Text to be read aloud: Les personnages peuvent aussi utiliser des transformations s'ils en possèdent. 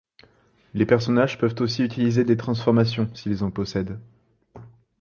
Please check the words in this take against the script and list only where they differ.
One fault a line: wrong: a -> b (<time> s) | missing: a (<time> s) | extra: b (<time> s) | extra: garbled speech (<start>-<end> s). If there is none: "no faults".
no faults